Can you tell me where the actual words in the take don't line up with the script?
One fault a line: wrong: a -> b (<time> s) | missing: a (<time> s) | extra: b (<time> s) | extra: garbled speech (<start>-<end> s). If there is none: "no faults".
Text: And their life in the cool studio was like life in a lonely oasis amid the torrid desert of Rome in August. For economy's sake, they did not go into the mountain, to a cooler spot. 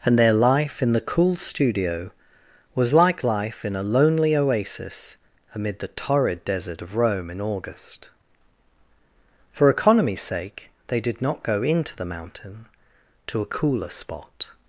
no faults